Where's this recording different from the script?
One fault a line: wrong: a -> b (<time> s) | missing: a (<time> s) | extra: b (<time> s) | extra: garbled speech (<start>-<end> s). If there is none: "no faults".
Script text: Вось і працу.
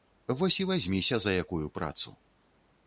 extra: вазьміся за якую (0.7 s)